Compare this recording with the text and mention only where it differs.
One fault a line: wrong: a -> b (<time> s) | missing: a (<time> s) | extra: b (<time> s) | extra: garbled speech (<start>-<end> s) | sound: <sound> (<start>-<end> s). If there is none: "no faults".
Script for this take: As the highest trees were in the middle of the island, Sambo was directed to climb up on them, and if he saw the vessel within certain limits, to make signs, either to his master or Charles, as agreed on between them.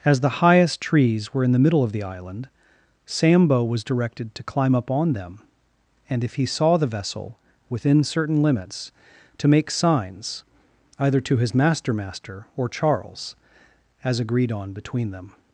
extra: master (11.9 s)